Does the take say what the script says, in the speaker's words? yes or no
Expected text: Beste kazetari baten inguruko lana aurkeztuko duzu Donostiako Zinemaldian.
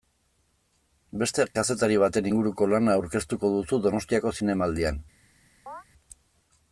yes